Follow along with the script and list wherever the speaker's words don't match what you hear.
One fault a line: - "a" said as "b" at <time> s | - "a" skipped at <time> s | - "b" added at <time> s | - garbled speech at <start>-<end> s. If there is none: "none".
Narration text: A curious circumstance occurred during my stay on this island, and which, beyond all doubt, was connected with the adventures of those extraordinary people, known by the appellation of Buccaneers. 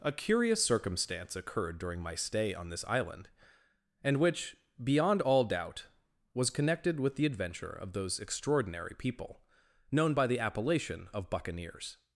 - "adventures" said as "adventure" at 7.2 s